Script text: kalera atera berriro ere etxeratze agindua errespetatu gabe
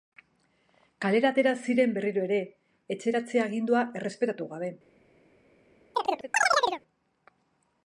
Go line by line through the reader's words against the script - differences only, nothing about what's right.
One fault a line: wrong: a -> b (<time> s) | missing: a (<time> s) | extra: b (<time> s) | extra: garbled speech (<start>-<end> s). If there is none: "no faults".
extra: ziren (1.7 s)